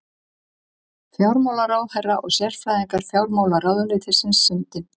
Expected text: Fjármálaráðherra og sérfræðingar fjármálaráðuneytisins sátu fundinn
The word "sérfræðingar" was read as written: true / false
true